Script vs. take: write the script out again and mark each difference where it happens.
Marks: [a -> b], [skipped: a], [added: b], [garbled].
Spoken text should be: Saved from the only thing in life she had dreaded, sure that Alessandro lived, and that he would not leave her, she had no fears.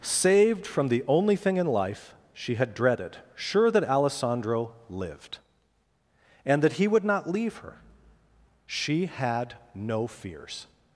Saved from the only thing in life she had dreaded, sure that Alessandro lived, and that he would not leave her, she had no fears.